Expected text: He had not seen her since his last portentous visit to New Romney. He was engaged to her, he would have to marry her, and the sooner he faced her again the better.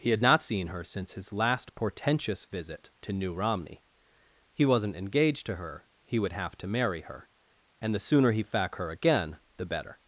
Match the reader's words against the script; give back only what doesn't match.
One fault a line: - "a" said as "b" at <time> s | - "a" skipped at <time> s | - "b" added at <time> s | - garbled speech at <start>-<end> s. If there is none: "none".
- "was" said as "wasn't" at 4.6 s
- "faced" said as "fac" at 8.4 s